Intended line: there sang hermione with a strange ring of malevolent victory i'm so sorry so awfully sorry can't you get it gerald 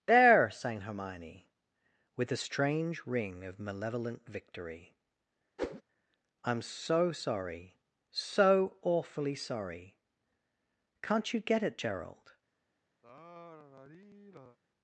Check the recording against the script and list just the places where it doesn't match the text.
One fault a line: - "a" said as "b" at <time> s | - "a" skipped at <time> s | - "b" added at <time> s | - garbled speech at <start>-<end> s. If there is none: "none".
none